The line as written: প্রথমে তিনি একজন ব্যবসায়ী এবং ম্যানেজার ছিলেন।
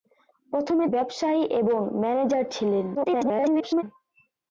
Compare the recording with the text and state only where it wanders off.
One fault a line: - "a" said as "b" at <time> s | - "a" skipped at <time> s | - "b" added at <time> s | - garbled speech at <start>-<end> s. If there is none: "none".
- "তিনি একজন" skipped at 0.9 s
- garbled speech at 2.9-3.8 s